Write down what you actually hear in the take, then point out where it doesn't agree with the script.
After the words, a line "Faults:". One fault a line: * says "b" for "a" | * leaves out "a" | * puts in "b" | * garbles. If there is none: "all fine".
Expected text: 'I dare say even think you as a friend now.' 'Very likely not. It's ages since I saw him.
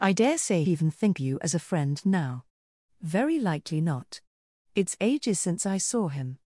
'I dare say even think you as a friend now.' 'Very likely not. It's ages since I saw him.
Faults:
all fine